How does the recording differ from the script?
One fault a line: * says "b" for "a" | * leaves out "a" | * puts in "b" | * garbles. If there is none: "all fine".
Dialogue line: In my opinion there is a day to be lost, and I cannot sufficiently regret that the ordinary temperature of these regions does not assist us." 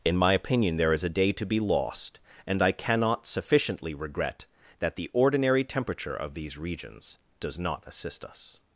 all fine